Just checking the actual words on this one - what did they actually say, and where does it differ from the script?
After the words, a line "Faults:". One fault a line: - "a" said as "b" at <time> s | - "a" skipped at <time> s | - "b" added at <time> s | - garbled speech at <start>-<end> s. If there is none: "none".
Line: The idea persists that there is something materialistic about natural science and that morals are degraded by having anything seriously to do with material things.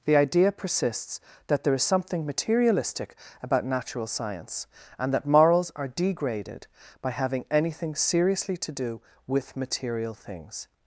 The idea persists that there is something materialistic about natural science and that morals are degraded by having anything seriously to do with material things.
Faults:
none